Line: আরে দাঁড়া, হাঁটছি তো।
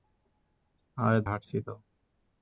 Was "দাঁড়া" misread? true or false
true